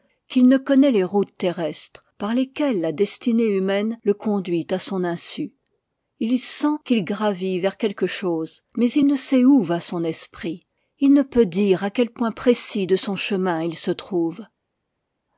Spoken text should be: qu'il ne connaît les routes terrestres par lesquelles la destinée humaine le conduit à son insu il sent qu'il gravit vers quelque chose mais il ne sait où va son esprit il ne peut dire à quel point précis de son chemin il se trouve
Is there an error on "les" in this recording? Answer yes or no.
no